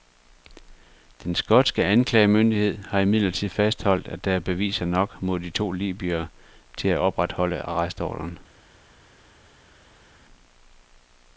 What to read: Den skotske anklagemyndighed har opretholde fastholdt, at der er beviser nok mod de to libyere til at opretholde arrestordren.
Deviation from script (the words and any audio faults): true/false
true